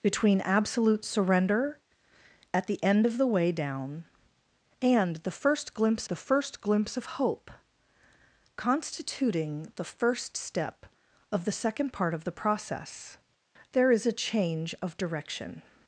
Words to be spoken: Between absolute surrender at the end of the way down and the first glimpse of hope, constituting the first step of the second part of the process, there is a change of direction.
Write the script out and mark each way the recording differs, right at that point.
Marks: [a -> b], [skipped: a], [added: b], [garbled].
Between absolute surrender at the end of the way down and the first glimpse [added: the first glimpse] of hope, constituting the first step of the second part of the process, there is a change of direction.